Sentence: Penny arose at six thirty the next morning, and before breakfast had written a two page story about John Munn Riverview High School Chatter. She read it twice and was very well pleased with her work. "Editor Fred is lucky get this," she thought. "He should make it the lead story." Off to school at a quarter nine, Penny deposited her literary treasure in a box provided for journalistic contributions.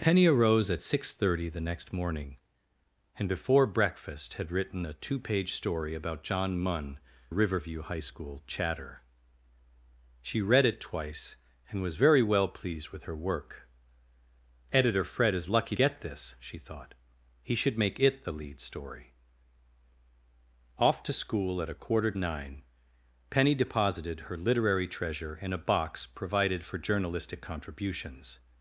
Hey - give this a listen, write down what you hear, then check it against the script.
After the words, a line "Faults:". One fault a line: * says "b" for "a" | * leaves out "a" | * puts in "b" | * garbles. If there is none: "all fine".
Penny arose at six thirty the next morning, and before breakfast had written a two page story about John Munn Riverview High School Chatter. She read it twice and was very well pleased with her work. "Editor Fred is lucky get this," she thought. "He should make it the lead story." Off to school at a quarter nine, Penny deposited her literary treasure in a box provided for journalistic contributions.
Faults:
all fine